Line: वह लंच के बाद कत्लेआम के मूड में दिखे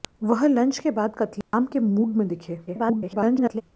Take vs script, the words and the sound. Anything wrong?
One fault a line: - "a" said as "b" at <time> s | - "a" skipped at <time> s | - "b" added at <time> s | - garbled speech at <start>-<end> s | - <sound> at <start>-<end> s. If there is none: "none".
- dropout at 1.4-1.5 s
- garbled speech at 2.7-3.6 s